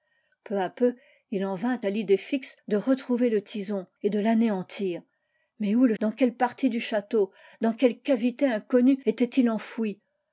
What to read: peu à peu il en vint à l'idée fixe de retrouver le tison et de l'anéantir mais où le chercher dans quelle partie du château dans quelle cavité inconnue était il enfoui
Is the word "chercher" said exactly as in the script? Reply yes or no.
no